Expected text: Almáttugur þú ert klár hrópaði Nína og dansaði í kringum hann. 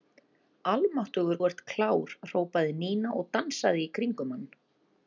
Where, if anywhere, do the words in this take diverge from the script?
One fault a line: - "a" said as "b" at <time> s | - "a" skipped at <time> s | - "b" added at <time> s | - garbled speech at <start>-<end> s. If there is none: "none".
none